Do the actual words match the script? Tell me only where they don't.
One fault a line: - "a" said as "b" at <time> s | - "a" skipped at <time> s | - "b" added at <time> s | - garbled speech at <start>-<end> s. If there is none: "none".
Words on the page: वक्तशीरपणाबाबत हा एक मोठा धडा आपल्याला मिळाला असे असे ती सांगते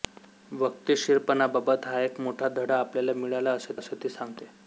none